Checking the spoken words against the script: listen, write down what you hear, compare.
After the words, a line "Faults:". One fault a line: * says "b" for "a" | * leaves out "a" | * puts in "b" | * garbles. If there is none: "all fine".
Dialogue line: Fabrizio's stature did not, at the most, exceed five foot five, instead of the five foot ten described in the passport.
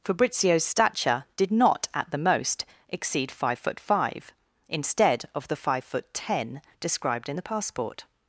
Fabrizio's stature did not, at the most, exceed five foot five, instead of the five foot ten described in the passport.
Faults:
all fine